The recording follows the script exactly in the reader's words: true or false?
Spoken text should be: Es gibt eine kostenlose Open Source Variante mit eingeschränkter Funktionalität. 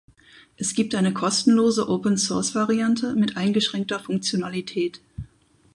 true